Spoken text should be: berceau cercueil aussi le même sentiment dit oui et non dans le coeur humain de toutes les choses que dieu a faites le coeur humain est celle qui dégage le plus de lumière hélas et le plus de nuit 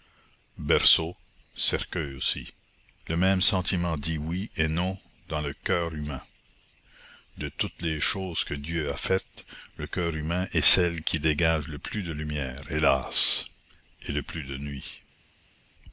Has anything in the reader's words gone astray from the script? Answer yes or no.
no